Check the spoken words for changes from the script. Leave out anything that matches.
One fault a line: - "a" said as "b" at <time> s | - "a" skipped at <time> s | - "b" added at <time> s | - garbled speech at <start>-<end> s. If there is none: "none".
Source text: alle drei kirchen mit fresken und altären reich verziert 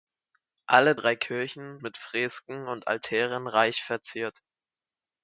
none